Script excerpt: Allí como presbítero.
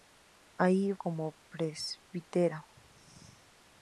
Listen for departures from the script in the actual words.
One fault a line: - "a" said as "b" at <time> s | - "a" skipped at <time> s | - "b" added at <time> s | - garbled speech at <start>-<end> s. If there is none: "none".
none